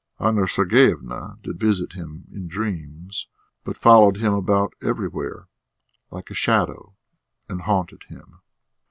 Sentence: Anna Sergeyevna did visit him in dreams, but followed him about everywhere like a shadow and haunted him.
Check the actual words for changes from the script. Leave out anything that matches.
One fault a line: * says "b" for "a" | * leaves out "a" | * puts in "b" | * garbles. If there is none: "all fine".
all fine